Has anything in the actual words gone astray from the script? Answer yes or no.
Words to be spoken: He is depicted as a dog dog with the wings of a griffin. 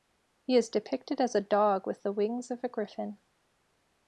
yes